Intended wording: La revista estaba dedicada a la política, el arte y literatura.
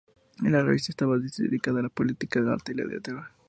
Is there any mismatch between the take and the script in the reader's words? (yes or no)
yes